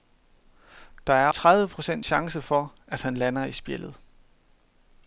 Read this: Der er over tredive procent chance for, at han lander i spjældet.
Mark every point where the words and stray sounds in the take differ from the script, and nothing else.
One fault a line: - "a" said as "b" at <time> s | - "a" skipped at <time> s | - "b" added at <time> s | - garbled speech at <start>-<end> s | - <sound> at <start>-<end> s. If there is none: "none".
- "over" skipped at 1.3 s